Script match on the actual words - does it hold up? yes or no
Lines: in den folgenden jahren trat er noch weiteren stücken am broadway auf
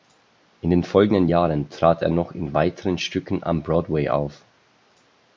no